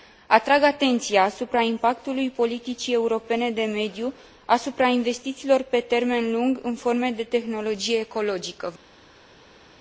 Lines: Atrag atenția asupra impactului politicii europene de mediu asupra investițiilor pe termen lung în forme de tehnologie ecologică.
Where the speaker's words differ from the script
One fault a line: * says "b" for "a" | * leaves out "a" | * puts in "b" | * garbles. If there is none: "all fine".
all fine